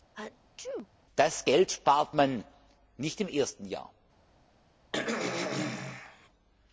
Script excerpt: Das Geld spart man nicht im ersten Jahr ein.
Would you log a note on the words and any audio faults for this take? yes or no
yes